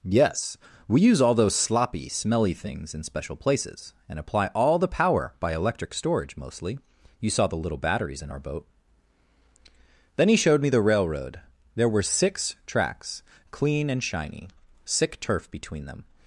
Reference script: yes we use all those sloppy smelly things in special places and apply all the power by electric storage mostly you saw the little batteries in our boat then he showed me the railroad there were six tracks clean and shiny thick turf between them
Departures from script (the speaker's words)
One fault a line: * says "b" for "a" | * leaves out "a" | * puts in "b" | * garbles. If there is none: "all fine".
* says "sick" for "thick"